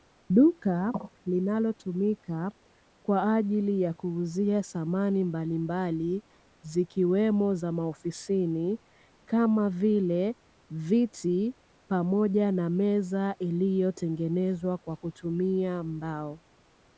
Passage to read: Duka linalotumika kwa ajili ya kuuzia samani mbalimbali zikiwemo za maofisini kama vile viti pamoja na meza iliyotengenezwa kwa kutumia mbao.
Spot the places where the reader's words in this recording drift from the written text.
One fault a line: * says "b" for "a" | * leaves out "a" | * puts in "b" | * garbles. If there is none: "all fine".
all fine